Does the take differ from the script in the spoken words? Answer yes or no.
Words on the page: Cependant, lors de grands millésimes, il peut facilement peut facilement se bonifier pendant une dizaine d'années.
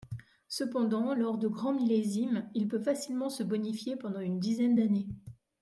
yes